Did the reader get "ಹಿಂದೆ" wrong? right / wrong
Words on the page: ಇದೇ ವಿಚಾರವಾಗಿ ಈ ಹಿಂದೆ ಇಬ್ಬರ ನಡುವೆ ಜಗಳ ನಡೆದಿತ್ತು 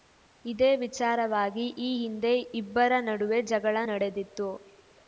right